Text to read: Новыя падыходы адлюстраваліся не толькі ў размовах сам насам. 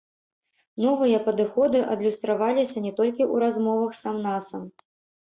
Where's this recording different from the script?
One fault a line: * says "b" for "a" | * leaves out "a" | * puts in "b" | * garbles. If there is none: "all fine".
all fine